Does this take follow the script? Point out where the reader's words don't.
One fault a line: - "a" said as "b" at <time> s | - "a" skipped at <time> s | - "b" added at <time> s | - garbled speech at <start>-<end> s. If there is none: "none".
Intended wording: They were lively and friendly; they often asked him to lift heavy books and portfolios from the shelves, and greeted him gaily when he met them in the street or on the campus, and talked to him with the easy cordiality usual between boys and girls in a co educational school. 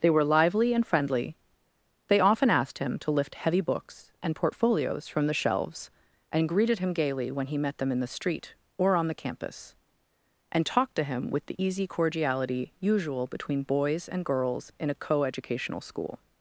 none